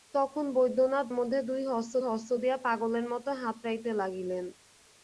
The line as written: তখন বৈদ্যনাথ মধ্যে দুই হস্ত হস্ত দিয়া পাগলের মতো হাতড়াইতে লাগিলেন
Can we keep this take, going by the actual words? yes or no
yes